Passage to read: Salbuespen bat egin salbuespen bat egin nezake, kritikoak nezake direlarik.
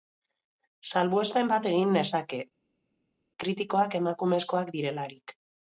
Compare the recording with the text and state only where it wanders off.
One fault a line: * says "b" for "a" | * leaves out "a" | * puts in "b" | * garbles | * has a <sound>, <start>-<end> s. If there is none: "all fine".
* leaves out "salbuespen bat egin"
* says "emakumezkoak" for "nezake"